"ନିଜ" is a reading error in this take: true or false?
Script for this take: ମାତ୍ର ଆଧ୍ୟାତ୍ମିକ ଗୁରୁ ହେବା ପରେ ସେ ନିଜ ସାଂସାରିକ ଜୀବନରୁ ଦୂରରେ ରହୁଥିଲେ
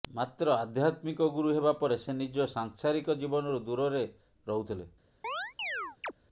false